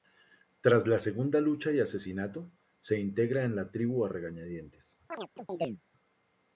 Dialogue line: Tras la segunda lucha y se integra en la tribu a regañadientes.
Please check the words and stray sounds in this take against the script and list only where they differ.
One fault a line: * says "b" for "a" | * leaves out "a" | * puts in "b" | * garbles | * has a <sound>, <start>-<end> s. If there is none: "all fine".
* puts in "asesinato"
* has a chirp, 5.1-5.8 s